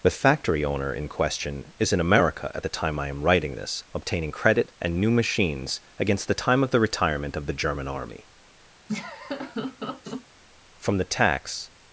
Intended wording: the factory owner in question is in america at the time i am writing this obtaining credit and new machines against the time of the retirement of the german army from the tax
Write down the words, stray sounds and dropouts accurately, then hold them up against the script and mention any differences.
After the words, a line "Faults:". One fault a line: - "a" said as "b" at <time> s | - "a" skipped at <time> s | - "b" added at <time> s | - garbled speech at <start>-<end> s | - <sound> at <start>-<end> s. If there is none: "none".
the factory owner in question is in america at the time i am writing this obtaining credit and new machines against the time of the retirement of the german army from the tax
Faults:
- laugh at 8.9-10.2 s